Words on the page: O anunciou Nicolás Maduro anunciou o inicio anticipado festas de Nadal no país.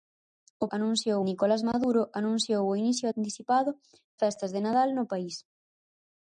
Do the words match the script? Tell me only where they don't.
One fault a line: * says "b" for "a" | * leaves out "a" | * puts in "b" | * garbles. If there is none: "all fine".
all fine